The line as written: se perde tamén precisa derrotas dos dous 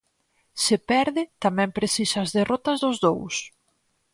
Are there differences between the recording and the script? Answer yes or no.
yes